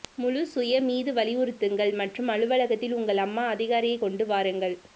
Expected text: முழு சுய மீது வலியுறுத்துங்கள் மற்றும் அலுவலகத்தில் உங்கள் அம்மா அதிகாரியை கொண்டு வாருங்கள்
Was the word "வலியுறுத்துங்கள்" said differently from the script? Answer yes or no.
no